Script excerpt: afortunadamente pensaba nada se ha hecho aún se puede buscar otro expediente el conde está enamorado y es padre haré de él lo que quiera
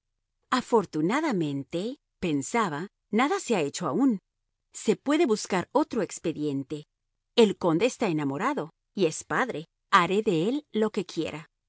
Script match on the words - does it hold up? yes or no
yes